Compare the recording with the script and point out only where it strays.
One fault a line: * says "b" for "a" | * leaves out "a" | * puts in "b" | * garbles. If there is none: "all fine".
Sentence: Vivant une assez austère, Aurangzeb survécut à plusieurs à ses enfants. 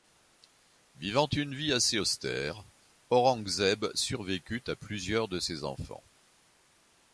* puts in "vie"
* says "de" for "à"